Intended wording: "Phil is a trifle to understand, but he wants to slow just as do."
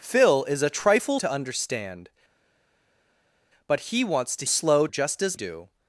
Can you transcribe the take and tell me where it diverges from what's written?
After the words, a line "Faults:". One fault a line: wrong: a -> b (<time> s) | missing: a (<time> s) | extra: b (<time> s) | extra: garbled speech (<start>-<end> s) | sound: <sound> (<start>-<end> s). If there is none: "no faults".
"Phil is a trifle to understand, but he wants to slow just as do."
Faults:
no faults